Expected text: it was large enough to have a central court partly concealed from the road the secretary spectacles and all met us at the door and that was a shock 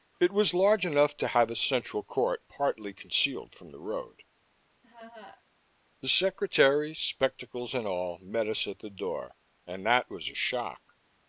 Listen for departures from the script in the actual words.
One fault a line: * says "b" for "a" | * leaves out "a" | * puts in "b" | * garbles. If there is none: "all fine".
all fine